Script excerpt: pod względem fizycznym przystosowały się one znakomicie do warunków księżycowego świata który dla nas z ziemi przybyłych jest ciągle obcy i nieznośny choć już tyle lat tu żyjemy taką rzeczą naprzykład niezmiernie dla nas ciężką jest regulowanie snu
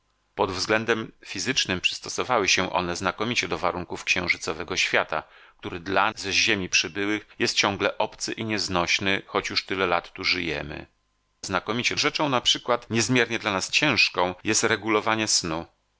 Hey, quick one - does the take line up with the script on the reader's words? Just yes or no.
no